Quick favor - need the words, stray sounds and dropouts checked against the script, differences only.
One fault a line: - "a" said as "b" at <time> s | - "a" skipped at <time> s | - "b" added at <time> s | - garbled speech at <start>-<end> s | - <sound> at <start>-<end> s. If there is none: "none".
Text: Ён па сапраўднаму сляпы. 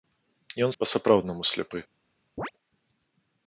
- chirp at 2.4-2.5 s